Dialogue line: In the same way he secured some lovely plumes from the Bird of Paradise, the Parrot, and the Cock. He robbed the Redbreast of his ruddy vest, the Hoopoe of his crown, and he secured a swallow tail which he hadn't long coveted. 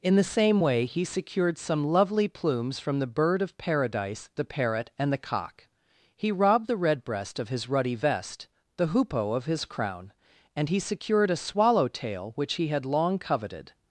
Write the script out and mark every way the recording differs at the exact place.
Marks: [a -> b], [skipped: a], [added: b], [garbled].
In the same way he secured some lovely plumes from the Bird of Paradise, the Parrot, and the Cock. He robbed the Redbreast of his ruddy vest, the Hoopoe of his crown, and he secured a swallow tail which he [hadn't -> had] long coveted.